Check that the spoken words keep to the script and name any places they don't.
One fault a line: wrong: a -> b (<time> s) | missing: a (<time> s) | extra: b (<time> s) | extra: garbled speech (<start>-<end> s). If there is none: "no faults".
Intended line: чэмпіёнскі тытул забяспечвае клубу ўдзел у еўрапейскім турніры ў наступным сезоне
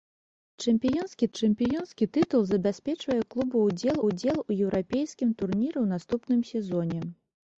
extra: чэмпіёнскі (1.4 s)
extra: ўдзел (4.1 s)